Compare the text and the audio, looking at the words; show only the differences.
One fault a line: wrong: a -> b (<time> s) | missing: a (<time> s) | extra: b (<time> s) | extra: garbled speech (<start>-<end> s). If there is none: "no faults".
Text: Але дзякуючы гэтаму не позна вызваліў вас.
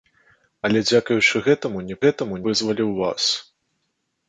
wrong: позна -> гэтаму (2.1 s)